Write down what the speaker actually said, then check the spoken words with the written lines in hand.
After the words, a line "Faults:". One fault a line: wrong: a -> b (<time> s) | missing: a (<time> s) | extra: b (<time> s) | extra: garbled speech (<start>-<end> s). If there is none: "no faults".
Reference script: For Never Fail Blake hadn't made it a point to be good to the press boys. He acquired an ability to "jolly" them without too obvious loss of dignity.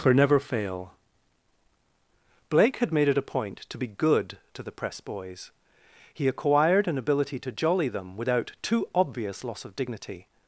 For Never Fail Blake had made it a point to be good to the press boys. He acquired an ability to "jolly" them without too obvious loss of dignity.
Faults:
wrong: hadn't -> had (2.8 s)